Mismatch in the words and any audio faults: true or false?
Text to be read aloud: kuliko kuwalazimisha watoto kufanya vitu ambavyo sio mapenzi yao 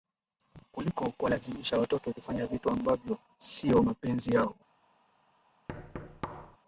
true